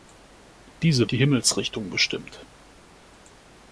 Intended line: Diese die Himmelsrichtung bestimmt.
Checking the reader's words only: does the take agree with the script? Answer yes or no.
yes